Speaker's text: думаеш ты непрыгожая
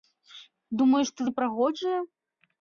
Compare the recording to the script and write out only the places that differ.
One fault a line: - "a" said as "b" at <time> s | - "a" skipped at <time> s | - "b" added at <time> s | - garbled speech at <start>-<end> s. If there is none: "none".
none